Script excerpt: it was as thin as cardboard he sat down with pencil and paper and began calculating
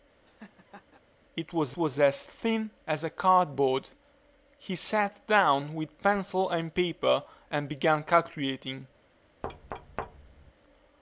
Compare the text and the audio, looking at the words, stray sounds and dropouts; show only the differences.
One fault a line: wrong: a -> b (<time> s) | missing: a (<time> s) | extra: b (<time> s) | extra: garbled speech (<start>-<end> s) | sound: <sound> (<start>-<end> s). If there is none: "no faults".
sound: laugh (0.2-1.0 s)
extra: was (1.8 s)
sound: thud (9.4-10.5 s)